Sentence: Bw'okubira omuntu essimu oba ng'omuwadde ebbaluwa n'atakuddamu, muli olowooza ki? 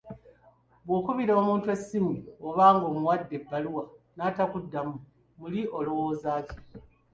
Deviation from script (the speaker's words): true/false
false